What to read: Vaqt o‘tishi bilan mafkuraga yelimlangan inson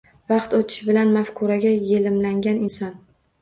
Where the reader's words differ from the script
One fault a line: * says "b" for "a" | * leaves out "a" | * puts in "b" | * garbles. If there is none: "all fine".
all fine